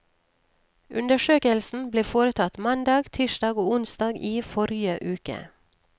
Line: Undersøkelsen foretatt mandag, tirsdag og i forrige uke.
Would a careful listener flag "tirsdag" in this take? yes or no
no